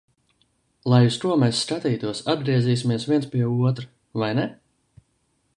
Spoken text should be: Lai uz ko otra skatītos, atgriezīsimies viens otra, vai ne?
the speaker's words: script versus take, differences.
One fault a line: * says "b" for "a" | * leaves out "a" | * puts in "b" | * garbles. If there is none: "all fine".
* says "mēs" for "otra"
* puts in "pie"